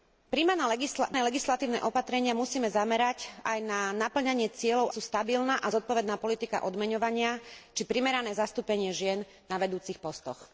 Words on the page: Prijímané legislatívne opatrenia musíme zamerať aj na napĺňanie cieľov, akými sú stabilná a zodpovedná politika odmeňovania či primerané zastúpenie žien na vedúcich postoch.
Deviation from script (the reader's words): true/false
true